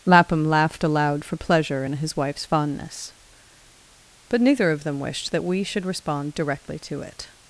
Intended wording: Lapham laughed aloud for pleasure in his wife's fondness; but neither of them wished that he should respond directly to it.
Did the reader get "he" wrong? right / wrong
wrong